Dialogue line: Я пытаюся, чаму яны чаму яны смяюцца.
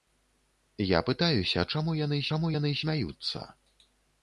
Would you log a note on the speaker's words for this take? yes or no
no